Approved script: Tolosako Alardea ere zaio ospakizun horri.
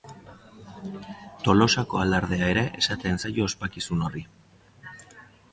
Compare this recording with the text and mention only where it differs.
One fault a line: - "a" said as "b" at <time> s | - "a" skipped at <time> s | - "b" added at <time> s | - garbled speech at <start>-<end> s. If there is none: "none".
- "esaten" added at 2.8 s